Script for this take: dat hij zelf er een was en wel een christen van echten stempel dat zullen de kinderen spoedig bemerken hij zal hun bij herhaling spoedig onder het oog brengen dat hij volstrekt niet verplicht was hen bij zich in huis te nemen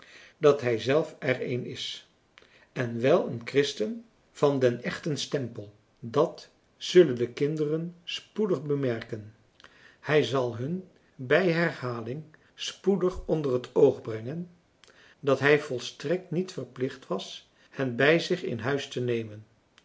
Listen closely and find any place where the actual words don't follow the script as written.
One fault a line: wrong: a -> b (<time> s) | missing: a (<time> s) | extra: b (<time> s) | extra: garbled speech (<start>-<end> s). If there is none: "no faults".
wrong: was -> is (1.6 s)
extra: den (4.6 s)